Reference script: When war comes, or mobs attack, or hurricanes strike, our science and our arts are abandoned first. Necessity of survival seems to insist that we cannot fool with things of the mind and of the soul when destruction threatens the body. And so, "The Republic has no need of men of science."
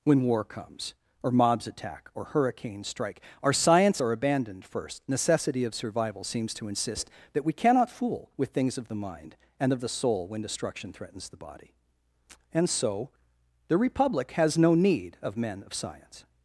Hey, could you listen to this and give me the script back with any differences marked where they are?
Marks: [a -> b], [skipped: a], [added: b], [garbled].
When war comes, or mobs attack, or hurricanes strike, our science [skipped: and our arts] are abandoned first. Necessity of survival seems to insist that we cannot fool with things of the mind and of the soul when destruction threatens the body. And so, "The Republic has no need of men of science."